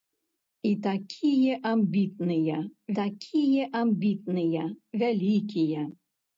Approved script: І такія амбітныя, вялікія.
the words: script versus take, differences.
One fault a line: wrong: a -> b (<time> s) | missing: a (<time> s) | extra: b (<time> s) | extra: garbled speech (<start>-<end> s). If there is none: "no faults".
extra: такія амбітныя (3.0 s)